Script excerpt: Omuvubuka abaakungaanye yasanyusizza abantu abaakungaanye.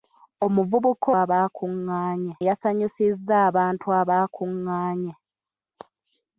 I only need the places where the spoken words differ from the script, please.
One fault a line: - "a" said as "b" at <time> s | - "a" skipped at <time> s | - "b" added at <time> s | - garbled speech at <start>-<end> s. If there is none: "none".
none